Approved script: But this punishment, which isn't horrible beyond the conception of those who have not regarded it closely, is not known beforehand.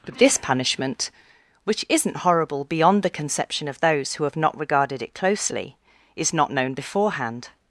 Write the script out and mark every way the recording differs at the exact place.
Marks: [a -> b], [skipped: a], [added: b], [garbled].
But this punishment, which isn't horrible beyond the conception of those who have not regarded it closely, is not known beforehand.